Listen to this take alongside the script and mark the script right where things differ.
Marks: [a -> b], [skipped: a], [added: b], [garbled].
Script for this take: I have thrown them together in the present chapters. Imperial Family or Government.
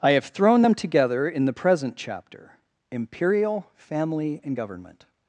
I have thrown them together in the present [chapters. -> chapter] Imperial Family [or -> and] Government.